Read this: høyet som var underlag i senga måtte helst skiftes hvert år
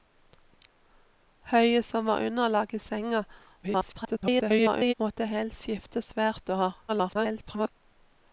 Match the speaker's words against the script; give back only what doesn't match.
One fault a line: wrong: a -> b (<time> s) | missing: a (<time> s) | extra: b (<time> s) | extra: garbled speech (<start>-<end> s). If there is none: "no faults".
extra: garbled speech (3.6-4.9 s)
extra: garbled speech (6.9-7.7 s)